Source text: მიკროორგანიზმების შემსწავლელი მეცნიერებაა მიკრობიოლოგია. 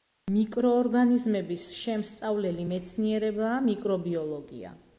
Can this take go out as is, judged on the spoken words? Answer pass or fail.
pass